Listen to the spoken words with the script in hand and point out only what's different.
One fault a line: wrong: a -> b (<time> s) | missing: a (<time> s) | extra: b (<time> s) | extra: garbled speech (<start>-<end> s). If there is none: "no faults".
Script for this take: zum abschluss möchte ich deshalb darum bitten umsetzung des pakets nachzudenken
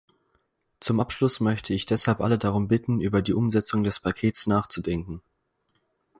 extra: alle (2.2 s)
extra: über die (3.0 s)